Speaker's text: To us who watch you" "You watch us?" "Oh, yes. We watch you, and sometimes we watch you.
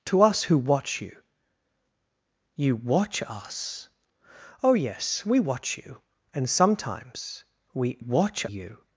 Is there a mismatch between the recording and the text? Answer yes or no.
no